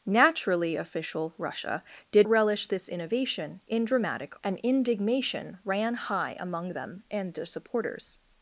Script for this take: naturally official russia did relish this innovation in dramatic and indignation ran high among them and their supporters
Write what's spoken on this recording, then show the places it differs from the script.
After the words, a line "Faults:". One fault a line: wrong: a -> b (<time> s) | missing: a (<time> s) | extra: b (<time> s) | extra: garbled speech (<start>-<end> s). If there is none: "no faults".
naturally official russia did relish this innovation in dramatic and indignation ran high among them and their supporters
Faults:
no faults